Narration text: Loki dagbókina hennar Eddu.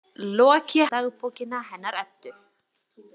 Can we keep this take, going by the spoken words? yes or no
yes